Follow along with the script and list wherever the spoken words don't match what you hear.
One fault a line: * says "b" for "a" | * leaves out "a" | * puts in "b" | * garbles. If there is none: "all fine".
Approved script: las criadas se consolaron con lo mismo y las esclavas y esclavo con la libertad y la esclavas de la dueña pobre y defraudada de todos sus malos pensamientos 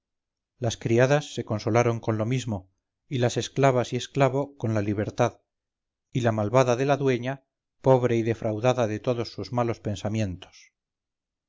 * says "malvada" for "esclavas"